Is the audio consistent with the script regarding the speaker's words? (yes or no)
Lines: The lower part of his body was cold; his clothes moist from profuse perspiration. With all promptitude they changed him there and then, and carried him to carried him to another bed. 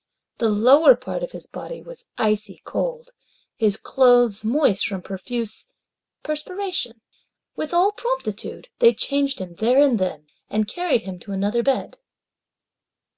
no